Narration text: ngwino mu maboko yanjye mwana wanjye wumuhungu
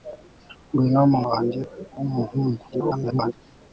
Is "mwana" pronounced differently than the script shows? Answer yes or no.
yes